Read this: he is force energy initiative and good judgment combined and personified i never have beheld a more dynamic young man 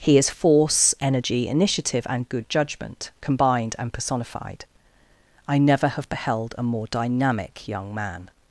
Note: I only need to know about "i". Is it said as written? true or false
true